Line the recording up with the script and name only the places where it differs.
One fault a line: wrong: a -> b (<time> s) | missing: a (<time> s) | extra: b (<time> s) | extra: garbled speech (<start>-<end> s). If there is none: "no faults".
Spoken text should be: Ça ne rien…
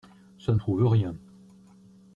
extra: prouve (0.6 s)